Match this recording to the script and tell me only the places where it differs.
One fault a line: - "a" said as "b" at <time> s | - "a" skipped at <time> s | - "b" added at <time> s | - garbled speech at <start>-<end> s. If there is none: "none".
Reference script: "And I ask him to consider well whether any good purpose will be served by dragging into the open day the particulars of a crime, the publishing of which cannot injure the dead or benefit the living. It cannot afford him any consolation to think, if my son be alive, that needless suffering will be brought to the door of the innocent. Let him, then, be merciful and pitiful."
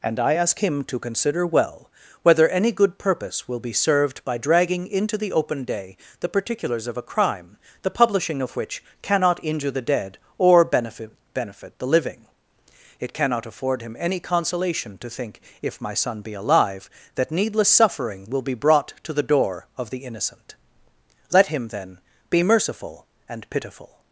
- "benefit" added at 11.3 s